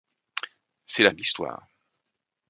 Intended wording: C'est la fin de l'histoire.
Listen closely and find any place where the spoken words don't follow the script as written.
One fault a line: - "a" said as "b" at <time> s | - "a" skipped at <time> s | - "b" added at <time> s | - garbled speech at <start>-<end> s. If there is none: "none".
- "fin" skipped at 1.1 s